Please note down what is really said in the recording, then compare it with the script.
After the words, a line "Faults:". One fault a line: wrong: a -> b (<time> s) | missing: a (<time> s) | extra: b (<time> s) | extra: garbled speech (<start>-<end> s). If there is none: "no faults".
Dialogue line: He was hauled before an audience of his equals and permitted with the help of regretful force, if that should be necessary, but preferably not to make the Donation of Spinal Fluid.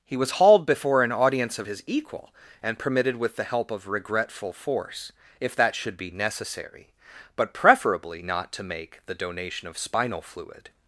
He was hauled before an audience of his equal and permitted with the help of regretful force, if that should be necessary, but preferably not to make the Donation of Spinal Fluid.
Faults:
wrong: equals -> equal (1.8 s)